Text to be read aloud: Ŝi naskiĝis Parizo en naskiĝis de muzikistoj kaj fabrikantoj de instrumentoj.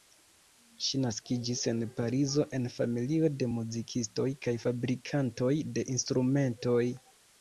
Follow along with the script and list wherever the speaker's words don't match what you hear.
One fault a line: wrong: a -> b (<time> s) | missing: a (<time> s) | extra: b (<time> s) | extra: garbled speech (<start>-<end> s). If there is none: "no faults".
extra: en (1.7 s)
wrong: naskiĝis -> familio (2.8 s)